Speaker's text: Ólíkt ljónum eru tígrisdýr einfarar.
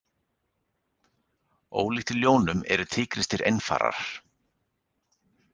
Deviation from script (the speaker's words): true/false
false